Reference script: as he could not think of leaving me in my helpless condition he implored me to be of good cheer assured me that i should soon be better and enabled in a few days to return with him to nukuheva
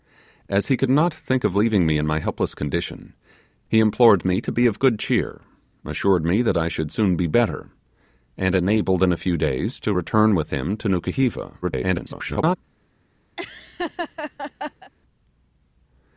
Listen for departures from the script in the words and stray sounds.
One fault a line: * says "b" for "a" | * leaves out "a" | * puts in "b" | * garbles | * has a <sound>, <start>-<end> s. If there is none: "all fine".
* garbles
* has a laugh, 13.4-14.9 s